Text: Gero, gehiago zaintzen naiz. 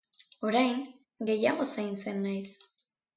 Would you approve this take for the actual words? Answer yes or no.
no